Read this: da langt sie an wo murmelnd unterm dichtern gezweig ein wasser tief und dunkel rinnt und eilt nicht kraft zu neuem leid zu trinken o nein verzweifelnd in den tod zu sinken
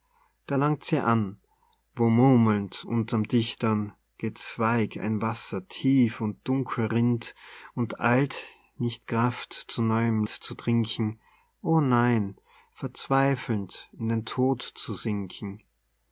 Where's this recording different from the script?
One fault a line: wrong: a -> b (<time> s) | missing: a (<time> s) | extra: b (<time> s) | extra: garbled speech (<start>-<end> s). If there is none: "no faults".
missing: leid (10.2 s)